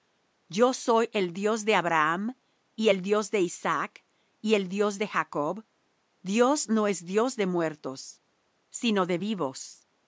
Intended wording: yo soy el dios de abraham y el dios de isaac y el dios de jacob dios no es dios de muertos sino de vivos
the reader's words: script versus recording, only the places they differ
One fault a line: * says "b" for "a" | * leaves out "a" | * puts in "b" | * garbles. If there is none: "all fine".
all fine